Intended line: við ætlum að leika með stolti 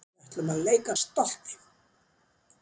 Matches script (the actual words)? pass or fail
fail